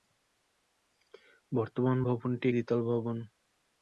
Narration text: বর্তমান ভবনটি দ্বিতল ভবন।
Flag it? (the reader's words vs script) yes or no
no